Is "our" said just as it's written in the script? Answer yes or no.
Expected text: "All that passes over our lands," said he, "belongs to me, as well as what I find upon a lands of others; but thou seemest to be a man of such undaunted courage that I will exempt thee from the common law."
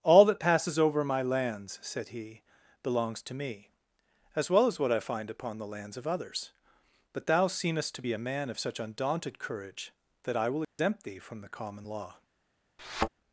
no